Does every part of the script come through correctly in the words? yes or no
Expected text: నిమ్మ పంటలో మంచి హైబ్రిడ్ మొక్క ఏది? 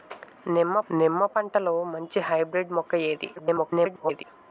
no